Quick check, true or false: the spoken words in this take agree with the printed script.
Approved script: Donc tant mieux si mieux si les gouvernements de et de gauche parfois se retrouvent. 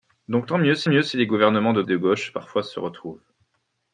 true